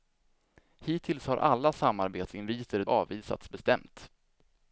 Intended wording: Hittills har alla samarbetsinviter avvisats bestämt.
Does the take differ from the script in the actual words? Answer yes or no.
no